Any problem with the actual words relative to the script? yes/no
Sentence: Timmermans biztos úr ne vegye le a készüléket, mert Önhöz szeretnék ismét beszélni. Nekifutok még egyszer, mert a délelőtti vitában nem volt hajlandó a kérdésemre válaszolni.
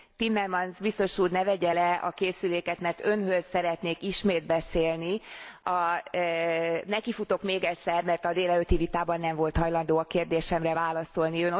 no